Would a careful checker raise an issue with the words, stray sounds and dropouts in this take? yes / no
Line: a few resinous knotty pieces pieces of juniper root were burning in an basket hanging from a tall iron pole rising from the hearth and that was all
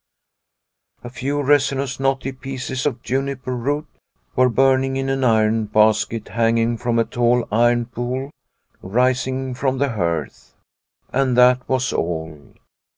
yes